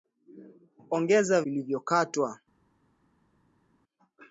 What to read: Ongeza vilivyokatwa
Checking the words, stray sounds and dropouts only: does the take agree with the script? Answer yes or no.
yes